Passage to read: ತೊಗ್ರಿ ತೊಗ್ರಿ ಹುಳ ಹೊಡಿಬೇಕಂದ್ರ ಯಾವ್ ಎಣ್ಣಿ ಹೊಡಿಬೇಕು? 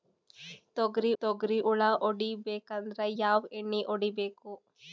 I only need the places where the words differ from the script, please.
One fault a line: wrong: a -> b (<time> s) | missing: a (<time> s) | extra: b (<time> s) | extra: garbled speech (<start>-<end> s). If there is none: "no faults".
no faults